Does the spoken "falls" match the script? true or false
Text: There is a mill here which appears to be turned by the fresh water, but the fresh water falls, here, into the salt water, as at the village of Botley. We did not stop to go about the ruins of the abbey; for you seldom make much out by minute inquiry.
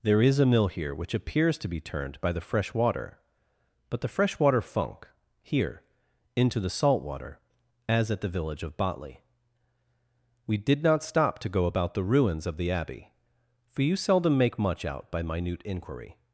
false